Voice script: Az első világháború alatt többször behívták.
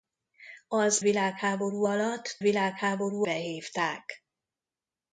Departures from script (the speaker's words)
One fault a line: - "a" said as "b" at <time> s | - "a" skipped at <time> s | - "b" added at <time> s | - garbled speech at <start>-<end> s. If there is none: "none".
- "első" skipped at 1.0 s
- "többször" said as "világháború" at 2.4 s